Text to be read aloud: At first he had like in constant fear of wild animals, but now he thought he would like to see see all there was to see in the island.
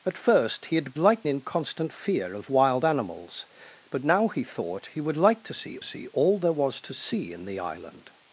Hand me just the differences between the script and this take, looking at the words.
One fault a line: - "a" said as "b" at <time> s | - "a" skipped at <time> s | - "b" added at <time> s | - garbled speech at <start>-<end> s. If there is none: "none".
none